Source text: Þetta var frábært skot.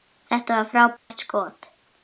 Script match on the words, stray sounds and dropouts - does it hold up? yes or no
no